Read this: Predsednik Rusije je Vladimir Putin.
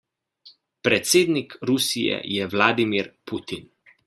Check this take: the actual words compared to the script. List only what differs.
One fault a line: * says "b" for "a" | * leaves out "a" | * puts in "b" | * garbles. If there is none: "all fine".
all fine